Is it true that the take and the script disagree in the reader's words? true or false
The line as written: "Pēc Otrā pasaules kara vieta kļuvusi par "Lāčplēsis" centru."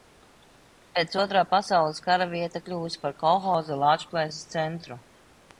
true